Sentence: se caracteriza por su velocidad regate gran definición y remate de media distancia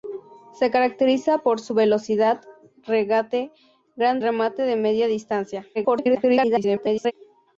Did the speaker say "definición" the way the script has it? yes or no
no